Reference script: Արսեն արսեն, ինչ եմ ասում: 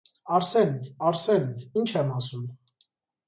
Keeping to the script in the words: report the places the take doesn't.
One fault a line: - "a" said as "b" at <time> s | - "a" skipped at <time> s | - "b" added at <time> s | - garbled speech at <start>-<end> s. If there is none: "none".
none